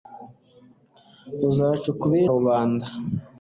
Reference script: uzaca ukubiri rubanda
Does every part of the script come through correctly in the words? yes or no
yes